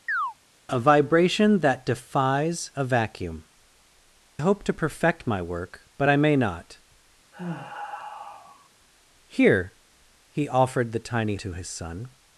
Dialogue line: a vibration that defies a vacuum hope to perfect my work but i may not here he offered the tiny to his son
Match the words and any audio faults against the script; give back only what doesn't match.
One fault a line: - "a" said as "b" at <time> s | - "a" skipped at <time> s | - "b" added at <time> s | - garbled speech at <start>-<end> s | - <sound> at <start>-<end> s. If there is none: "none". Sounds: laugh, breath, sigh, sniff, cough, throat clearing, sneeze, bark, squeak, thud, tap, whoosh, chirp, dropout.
- chirp at 0.1-0.3 s
- sigh at 7.3-8.7 s